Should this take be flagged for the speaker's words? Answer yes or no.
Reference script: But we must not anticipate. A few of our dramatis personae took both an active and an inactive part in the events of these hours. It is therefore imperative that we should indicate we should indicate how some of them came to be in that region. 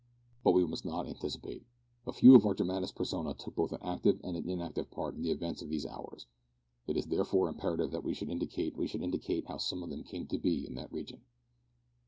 no